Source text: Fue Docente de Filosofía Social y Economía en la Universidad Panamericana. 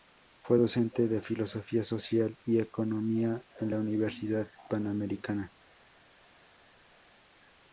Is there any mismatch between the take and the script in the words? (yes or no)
no